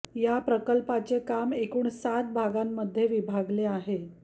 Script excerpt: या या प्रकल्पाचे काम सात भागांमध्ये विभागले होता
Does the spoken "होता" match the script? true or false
false